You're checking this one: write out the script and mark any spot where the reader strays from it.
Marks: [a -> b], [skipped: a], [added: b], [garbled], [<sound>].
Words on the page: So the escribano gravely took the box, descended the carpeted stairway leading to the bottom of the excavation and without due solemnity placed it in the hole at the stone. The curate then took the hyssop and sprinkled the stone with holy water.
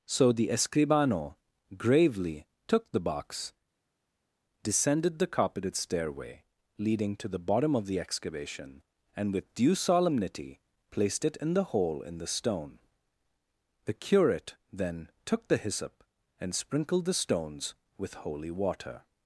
So the escribano gravely took the box, descended the carpeted stairway leading to the bottom of the excavation and [without -> with] due solemnity placed it in the hole [at -> in] the stone. The curate then took the hyssop and sprinkled the [stone -> stones] with holy water.